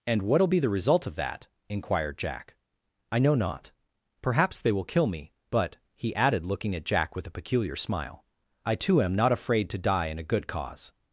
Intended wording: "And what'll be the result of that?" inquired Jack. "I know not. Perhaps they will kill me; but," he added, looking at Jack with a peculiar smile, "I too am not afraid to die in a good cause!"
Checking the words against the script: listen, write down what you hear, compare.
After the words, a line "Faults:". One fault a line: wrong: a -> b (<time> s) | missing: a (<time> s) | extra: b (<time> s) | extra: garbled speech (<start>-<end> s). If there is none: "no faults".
"And what'll be the result of that?" inquired Jack. "I know not. Perhaps they will kill me; but," he added, looking at Jack with a peculiar smile, "I too am not afraid to die in a good cause!"
Faults:
no faults